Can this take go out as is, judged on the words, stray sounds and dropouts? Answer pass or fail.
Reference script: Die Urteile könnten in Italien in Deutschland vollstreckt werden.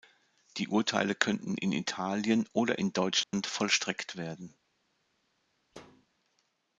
fail